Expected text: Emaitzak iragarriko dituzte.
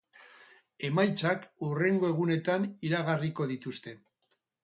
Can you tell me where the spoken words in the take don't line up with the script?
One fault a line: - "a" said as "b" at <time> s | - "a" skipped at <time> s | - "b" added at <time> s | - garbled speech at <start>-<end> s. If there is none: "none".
- "hurrengo egunetan" added at 1.7 s